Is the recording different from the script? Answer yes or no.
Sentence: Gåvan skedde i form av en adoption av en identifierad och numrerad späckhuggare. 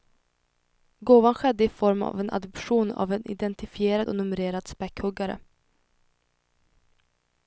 no